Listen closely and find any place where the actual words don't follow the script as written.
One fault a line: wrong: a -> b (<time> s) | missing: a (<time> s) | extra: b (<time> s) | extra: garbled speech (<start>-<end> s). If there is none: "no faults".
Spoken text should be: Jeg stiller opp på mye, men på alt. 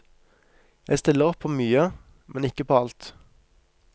extra: ikke (2.5 s)